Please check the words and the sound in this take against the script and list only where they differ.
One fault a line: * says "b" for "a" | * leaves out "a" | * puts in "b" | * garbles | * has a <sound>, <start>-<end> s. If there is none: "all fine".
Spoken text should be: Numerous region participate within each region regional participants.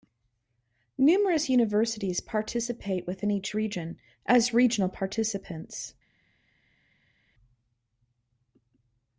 * says "universities" for "region"
* puts in "as"